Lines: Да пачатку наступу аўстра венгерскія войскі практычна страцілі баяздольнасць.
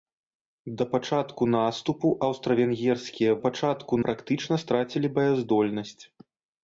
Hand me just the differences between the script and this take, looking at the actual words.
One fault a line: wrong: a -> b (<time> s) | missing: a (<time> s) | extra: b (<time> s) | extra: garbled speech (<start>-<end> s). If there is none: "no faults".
wrong: войскі -> пачатку (3.4 s)